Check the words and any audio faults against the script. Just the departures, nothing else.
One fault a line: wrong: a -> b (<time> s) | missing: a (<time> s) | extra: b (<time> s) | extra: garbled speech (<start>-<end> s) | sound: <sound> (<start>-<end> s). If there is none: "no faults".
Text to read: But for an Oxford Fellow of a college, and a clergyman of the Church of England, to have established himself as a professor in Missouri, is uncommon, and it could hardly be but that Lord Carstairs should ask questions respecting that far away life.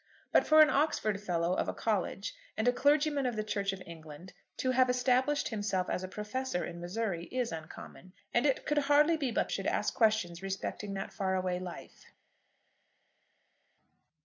missing: that Lord Carstairs (9.5 s)